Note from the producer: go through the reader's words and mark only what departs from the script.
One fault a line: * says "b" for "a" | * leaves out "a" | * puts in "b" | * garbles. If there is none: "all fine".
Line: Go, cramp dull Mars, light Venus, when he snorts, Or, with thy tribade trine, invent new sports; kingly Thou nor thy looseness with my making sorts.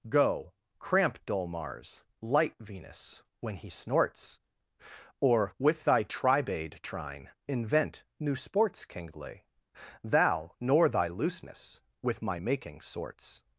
all fine